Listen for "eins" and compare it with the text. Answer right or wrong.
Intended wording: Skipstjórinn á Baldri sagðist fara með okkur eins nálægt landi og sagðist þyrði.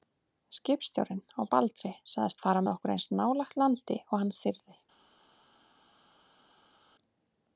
right